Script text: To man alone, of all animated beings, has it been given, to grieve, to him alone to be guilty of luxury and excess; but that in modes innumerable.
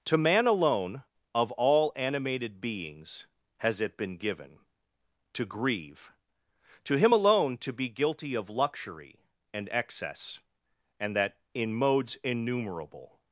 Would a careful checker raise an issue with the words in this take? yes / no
yes